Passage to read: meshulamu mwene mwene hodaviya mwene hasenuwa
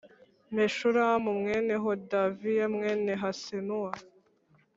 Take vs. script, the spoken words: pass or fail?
fail